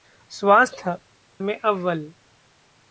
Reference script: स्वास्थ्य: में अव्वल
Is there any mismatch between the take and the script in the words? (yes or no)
no